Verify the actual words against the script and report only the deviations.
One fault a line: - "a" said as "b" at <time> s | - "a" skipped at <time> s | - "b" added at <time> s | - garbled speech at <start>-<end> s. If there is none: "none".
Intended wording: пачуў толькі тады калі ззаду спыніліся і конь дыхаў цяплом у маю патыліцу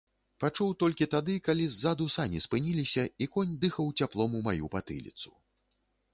- "сані" added at 2.1 s